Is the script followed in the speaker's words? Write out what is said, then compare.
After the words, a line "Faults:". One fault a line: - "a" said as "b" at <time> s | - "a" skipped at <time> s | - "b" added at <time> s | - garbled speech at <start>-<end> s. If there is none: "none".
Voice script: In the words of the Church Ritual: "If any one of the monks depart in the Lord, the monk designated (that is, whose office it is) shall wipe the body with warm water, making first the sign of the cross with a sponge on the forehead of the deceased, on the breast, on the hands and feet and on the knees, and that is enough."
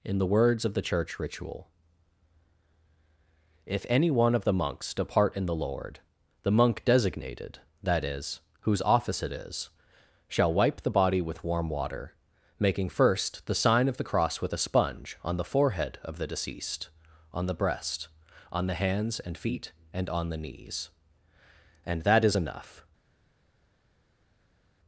In the words of the Church Ritual: "If any one of the monks depart in the Lord, the monk designated (that is, whose office it is) shall wipe the body with warm water, making first the sign of the cross with a sponge on the forehead of the deceased, on the breast, on the hands and feet and on the knees, and that is enough."
Faults:
none